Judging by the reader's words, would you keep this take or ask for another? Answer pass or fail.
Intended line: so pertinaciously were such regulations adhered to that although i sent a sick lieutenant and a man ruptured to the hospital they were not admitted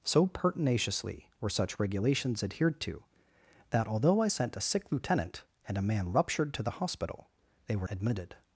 fail